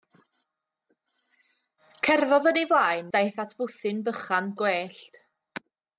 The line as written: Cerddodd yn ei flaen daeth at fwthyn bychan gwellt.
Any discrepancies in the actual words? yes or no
no